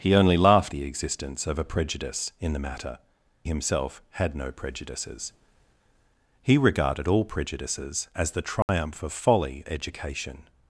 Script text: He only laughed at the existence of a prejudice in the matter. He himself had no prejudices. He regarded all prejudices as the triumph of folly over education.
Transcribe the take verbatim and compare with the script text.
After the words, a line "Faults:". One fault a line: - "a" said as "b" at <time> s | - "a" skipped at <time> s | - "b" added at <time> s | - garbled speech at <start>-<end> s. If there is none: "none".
He only laughed the existence of a prejudice in the matter. Himself had no prejudices. He regarded all prejudices as the triumph of folly education.
Faults:
- "at" skipped at 0.7 s
- "He" skipped at 3.0 s
- "over" skipped at 9.6 s